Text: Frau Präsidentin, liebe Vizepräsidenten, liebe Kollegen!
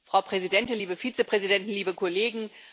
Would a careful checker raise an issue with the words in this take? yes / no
no